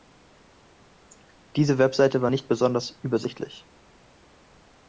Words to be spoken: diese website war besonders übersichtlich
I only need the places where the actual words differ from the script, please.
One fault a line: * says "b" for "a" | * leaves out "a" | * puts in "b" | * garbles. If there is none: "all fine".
* puts in "nicht"